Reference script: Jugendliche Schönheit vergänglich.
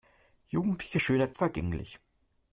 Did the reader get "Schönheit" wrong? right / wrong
right